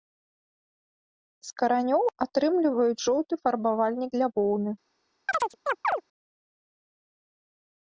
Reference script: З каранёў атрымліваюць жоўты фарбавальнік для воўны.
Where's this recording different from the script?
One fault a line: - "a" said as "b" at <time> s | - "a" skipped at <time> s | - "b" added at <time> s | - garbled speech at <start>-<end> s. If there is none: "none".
none